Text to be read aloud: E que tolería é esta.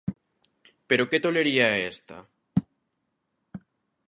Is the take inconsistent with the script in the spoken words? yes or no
yes